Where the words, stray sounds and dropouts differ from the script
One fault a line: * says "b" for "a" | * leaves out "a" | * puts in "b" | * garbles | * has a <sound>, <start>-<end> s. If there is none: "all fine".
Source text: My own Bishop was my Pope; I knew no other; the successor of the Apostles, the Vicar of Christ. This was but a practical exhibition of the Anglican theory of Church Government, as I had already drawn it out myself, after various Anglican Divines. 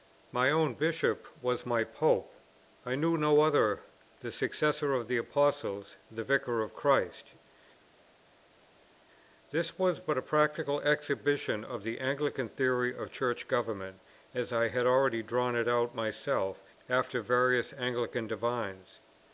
all fine